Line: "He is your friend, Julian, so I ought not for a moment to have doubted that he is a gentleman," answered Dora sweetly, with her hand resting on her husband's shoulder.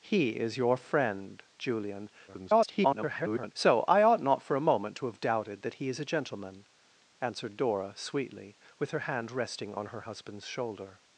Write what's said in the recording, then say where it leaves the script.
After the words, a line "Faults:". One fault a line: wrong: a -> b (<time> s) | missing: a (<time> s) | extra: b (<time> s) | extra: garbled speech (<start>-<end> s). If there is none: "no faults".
"He is your friend, Julian, [garbled] so I ought not for a moment to have doubted that he is a gentleman," answered Dora sweetly, with her hand resting on her husband's shoulder.
Faults:
extra: garbled speech (2.3-3.5 s)